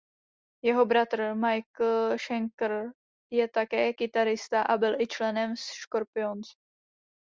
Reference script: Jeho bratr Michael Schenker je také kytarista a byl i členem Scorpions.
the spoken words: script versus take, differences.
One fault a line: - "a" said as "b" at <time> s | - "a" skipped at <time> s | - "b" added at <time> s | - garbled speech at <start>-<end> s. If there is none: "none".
none